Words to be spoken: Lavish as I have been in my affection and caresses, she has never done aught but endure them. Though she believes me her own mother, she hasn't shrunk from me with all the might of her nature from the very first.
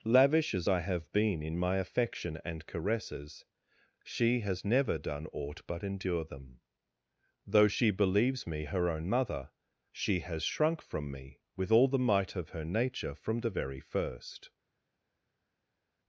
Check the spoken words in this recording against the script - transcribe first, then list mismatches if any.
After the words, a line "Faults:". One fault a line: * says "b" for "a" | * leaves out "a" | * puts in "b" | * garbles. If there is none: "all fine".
Lavish as I have been in my affection and caresses, she has never done aught but endure them. Though she believes me her own mother, she has shrunk from me with all the might of her nature from the very first.
Faults:
* says "has" for "hasn't"